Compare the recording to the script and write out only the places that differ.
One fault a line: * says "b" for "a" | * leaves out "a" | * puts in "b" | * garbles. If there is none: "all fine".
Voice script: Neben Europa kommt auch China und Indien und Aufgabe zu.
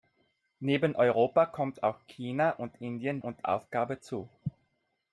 all fine